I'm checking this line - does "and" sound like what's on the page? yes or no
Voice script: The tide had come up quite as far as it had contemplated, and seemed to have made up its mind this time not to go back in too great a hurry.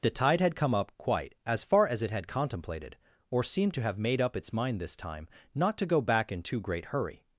no